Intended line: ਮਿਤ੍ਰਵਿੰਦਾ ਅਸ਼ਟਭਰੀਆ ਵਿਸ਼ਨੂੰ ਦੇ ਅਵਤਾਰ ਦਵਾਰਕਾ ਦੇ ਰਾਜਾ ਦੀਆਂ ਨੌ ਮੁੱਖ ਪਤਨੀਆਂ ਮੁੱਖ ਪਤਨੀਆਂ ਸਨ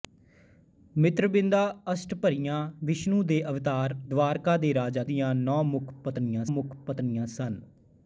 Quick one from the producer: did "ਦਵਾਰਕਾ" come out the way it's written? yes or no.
yes